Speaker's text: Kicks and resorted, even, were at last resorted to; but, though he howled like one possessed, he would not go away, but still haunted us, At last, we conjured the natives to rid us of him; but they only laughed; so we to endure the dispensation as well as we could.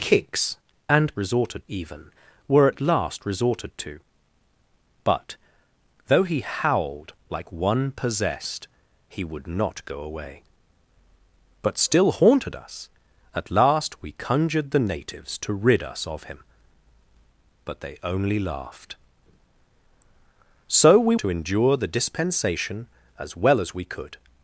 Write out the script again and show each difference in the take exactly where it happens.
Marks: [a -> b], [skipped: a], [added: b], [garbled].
Kicks and resorted, even, were at last resorted to; but, though he howled like one possessed, he would not go away, but still haunted us, At last, we conjured the natives to rid us of him; but they only laughed; so we to endure the dispensation as well as we could.